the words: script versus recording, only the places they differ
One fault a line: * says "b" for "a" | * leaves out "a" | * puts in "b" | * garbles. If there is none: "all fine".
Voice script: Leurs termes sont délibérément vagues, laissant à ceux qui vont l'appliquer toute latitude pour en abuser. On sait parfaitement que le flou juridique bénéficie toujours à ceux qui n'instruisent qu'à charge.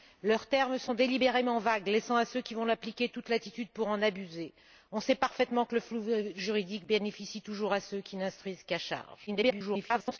* garbles